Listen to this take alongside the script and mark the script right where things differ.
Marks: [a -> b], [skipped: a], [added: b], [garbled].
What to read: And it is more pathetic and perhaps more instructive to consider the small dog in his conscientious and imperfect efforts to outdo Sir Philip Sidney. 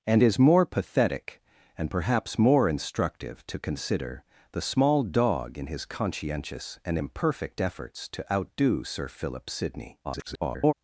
And [skipped: it] is more pathetic and perhaps more instructive to consider the small dog in his conscientious and imperfect efforts to outdo Sir Philip Sidney. [garbled]